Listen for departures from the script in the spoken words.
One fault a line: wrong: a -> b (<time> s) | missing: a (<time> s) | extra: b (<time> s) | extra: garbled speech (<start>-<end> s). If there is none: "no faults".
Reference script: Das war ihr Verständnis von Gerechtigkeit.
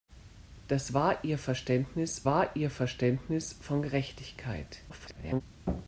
extra: war ihr Verständnis (2.2 s)
extra: garbled speech (4.9-5.4 s)